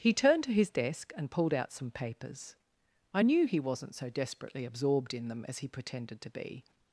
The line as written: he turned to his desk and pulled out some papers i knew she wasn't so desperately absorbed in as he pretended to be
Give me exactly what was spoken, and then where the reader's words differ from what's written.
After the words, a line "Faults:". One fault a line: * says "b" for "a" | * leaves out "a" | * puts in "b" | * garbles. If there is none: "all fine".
he turned to his desk and pulled out some papers i knew he wasn't so desperately absorbed in them as he pretended to be
Faults:
* says "he" for "she"
* puts in "them"